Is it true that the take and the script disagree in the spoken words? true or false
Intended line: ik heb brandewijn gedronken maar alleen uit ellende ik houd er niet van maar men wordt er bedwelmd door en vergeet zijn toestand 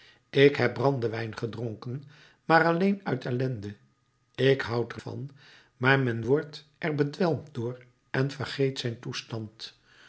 true